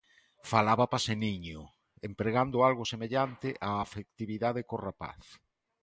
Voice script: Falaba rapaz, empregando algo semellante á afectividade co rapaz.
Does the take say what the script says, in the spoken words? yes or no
no